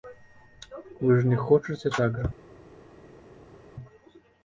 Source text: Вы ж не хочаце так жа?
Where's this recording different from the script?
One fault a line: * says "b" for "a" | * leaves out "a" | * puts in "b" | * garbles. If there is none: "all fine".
all fine